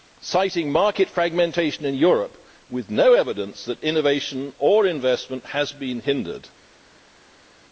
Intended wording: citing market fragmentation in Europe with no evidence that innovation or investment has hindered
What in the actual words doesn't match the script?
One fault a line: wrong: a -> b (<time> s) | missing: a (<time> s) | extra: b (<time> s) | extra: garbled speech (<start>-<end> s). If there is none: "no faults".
extra: been (5.7 s)